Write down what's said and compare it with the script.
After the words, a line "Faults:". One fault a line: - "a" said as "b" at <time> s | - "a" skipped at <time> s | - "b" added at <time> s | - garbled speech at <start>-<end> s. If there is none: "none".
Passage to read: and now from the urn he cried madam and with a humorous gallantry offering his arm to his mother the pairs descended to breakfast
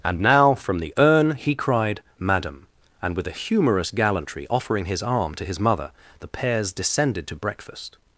and now from the urn he cried madam and with a humorous gallantry offering his arm to his mother the pairs descended to breakfast
Faults:
none